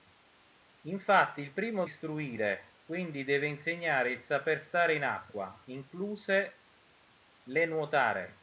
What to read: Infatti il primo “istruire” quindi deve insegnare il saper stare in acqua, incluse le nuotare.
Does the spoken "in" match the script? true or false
true